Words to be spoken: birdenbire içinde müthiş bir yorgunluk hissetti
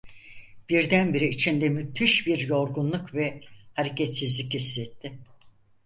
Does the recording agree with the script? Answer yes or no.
no